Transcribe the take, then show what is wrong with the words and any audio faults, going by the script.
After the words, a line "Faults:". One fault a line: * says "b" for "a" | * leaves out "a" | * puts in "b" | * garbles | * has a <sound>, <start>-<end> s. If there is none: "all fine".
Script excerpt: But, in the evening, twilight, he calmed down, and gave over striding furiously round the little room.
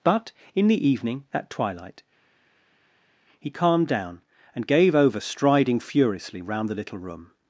But, in the evening, at twilight, he calmed down, and gave over striding furiously round the little room.
Faults:
* puts in "at"